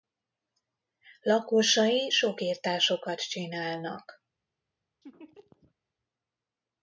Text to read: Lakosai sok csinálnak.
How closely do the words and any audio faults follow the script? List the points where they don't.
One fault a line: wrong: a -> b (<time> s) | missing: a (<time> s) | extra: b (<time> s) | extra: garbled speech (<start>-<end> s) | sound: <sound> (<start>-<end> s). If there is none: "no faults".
extra: irtásokat (2.4 s)
sound: laugh (5.0-5.7 s)